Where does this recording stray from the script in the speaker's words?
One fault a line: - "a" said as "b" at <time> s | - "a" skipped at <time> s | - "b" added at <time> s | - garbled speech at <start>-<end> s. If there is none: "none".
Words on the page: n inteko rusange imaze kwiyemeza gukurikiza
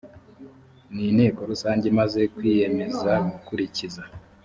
none